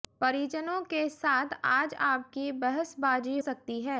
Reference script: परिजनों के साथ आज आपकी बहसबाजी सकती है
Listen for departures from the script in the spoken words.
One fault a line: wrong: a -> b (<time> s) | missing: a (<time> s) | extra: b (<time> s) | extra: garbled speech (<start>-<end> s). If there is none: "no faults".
no faults